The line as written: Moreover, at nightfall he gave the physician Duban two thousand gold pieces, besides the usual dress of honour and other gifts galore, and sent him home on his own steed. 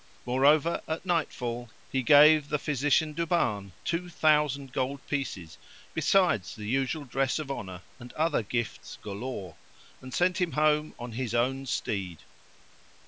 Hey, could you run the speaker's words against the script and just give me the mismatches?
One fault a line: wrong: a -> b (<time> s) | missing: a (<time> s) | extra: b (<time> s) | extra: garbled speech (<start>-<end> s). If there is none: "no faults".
no faults